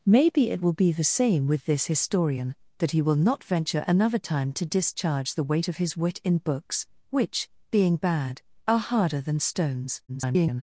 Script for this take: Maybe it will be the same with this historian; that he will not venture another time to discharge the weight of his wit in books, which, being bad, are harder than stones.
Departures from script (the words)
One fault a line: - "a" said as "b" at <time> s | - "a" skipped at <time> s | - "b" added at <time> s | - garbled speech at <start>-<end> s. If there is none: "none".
- garbled speech at 10.1-10.6 s